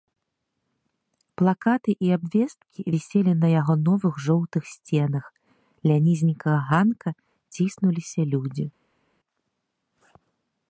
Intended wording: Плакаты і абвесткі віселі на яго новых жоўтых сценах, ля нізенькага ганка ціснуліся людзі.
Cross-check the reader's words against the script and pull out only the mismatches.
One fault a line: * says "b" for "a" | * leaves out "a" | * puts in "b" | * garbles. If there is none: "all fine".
all fine